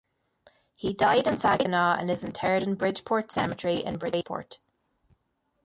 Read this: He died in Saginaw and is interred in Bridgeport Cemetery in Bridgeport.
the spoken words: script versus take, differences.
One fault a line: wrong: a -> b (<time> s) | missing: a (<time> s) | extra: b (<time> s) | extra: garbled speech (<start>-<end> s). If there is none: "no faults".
no faults